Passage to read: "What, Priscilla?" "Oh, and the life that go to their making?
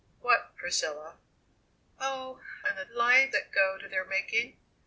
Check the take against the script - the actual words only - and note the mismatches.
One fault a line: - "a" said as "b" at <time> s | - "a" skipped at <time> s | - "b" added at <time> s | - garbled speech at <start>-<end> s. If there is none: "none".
none